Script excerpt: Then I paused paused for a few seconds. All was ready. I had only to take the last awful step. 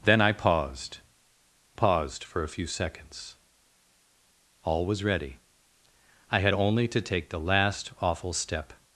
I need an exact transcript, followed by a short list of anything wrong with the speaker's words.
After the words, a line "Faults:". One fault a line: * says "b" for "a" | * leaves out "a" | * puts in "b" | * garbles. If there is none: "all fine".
Then I paused paused for a few seconds. All was ready. I had only to take the last awful step.
Faults:
all fine